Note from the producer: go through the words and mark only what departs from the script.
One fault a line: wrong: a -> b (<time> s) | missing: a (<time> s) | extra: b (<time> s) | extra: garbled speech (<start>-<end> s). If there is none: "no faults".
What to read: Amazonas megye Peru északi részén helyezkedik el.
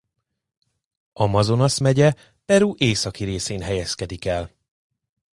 no faults